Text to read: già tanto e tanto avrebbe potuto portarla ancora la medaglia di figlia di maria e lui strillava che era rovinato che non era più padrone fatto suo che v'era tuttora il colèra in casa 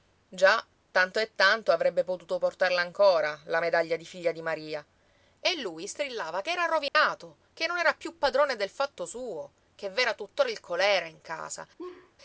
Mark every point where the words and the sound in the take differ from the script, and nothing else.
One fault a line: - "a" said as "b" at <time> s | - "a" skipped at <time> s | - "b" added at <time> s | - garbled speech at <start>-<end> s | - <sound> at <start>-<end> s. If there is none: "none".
- dropout at 6.9-7.0 s
- "del" added at 8.6 s
- laugh at 11.8-12.1 s